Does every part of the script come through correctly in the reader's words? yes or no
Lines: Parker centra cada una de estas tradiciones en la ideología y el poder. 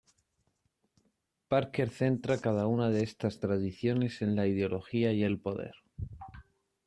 yes